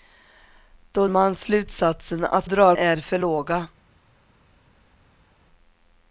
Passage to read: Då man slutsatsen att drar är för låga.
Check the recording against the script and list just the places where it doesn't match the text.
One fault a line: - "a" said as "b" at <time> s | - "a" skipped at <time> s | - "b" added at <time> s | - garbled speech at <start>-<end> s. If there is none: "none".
none